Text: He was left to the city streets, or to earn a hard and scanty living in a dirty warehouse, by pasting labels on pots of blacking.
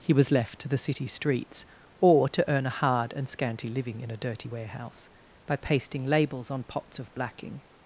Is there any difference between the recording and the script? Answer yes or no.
no